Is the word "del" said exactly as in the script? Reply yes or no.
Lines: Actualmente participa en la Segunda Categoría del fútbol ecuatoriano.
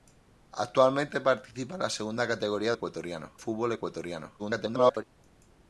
no